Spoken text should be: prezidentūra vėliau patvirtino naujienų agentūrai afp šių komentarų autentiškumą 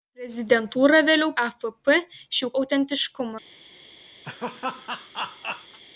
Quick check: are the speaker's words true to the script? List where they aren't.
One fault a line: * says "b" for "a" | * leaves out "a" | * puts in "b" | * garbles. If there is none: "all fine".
* leaves out "patvirtino naujienų agentūrai"
* leaves out "komentarų"